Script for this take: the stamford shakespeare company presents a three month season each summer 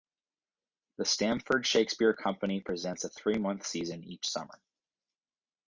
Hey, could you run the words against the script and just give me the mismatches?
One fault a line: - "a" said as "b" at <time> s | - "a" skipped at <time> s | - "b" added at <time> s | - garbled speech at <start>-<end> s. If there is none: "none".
none